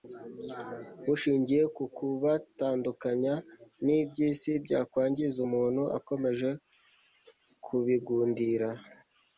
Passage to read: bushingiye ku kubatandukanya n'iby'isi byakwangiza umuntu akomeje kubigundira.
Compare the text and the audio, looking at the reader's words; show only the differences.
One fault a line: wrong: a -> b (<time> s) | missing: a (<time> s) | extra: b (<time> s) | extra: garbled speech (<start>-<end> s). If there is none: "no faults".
no faults